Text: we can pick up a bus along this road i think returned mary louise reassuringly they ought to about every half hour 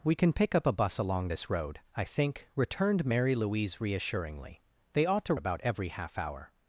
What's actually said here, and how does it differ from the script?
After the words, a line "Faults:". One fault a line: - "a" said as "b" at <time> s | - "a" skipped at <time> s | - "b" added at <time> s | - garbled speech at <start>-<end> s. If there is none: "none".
we can pick up a bus along this road i think returned mary louise reassuringly they ought to about every half hour
Faults:
none